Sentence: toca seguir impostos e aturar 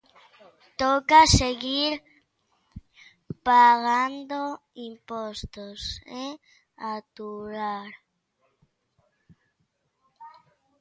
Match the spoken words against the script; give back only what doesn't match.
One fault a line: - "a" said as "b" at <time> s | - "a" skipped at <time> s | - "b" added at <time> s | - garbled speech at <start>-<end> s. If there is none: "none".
- "pagando" added at 3.5 s